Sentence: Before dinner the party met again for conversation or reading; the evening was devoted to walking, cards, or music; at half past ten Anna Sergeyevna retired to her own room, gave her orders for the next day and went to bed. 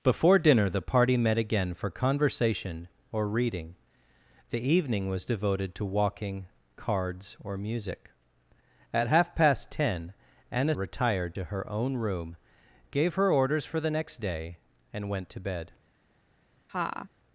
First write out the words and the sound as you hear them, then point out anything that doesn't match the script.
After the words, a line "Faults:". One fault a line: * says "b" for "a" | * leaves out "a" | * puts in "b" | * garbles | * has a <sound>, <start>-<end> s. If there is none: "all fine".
Before dinner the party met again for conversation or reading; the evening was devoted to walking, cards, or music; at half past ten Anna Retired to her own room, gave her orders for the next day and went to bed.
Faults:
* leaves out "Sergeyevna"
* has a laugh, 16.7-17.1 s